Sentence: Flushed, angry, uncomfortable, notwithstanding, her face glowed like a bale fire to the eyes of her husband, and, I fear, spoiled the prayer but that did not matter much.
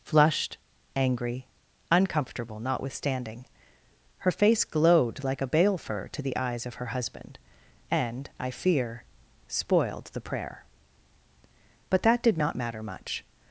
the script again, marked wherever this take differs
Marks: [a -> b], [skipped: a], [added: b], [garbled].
Flushed, angry, uncomfortable, notwithstanding, her face glowed like a bale [fire -> fur] to the eyes of her husband, and, I fear, spoiled the prayer but that did not matter much.